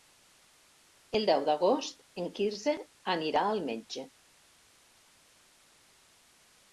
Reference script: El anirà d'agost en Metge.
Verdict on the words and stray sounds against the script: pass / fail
fail